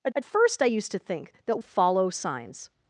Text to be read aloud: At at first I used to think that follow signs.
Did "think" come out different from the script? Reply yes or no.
no